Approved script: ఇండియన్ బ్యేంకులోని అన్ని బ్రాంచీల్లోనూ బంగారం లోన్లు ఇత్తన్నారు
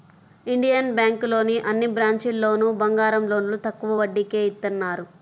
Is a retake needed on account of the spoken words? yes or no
yes